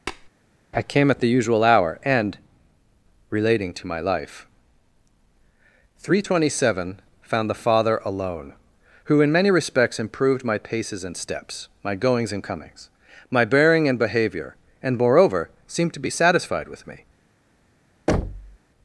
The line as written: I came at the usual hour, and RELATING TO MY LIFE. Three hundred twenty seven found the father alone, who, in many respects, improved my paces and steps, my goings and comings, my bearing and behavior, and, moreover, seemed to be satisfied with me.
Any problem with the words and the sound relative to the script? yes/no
yes